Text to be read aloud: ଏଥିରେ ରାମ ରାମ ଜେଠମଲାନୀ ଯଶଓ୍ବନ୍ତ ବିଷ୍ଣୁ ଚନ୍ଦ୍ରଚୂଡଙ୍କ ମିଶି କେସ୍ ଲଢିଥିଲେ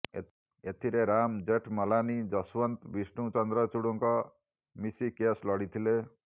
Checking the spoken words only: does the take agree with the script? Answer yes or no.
no